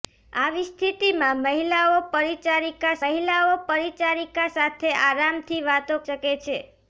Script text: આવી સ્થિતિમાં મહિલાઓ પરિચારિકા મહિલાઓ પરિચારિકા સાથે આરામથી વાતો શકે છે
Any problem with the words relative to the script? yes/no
no